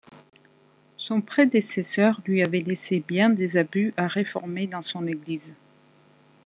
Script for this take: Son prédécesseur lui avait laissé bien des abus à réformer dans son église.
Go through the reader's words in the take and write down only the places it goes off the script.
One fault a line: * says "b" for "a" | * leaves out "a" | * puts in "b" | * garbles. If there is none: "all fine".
all fine